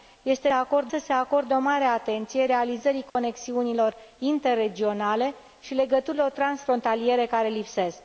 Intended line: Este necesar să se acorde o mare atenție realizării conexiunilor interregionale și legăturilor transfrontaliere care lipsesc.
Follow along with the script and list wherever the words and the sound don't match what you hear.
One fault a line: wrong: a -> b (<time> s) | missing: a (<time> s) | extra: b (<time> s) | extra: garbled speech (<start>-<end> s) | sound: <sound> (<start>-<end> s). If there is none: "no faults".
wrong: necesar -> acorde (0.5 s)
sound: dropout (3.1-3.2 s)